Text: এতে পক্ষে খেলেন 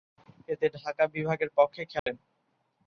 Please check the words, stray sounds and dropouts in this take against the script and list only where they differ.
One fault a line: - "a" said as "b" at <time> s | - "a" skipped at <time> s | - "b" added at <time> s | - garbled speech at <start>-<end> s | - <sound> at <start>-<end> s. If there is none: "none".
- "ঢাকা বিভাগের" added at 0.8 s
- dropout at 2.0-2.1 s